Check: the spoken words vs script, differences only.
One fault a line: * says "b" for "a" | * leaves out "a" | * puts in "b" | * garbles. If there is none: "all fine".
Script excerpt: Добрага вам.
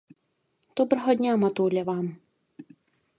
* puts in "дня матуля"